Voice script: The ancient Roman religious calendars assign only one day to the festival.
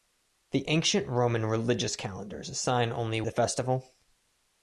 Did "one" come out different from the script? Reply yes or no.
yes